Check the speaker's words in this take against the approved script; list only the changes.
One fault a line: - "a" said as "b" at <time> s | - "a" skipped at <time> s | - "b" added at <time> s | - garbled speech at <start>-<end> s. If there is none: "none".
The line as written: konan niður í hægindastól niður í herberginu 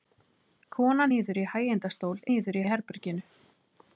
none